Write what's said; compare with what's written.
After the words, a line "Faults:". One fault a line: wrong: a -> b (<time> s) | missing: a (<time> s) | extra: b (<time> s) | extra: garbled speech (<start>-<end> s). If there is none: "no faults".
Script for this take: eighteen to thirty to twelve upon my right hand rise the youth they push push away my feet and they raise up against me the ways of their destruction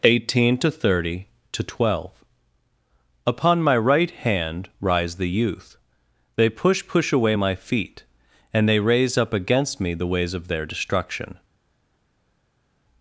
eighteen to thirty to twelve upon my right hand rise the youth they push push away my feet and they raise up against me the ways of their destruction
Faults:
no faults